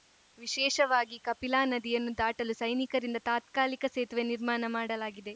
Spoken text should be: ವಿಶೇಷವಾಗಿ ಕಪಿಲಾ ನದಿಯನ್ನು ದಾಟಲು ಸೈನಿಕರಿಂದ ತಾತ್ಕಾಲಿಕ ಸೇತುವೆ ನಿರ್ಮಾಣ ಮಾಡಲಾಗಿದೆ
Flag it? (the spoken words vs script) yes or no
no